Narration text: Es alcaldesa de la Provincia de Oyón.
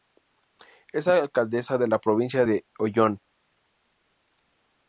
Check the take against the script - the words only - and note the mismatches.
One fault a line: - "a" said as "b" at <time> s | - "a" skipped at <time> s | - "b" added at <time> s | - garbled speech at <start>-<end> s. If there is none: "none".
none